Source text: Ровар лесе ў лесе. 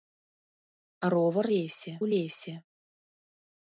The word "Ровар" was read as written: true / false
true